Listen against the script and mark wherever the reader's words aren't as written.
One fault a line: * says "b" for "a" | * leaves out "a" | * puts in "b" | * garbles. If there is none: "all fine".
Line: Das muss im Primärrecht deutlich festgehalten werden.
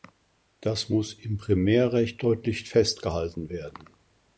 all fine